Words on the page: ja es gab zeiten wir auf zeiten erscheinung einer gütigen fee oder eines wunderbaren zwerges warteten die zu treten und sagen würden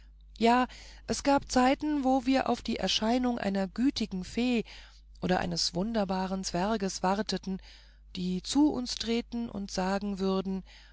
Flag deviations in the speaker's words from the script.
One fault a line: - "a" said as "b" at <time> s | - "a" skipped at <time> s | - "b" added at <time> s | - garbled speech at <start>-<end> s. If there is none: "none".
- "wo" added at 2.0 s
- "zeiten" said as "die" at 2.6 s
- "uns" added at 8.7 s